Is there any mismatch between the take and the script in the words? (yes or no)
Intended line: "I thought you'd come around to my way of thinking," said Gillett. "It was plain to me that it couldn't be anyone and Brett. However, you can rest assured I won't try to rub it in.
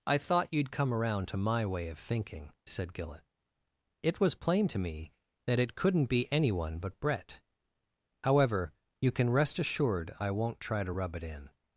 yes